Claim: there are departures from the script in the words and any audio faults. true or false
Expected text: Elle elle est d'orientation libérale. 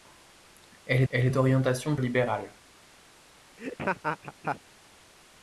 true